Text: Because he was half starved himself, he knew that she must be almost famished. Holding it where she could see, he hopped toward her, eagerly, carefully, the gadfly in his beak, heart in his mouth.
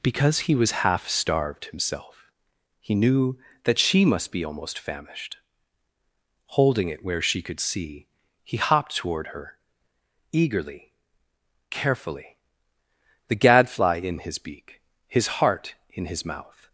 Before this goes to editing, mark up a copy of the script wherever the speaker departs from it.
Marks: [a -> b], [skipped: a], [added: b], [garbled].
Because he was half starved himself, he knew that she must be almost famished. Holding it where she could see, he hopped toward her, eagerly, carefully, the gadfly in his beak, [added: his] heart in his mouth.